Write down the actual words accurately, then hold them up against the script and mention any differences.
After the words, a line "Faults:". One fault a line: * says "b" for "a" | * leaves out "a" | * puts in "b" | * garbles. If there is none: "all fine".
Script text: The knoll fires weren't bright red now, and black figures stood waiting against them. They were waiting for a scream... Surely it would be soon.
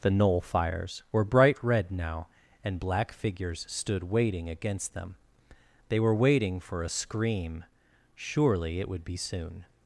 The knoll fires were bright red now, and black figures stood waiting against them. They were waiting for a scream... Surely it would be soon.
Faults:
* says "were" for "weren't"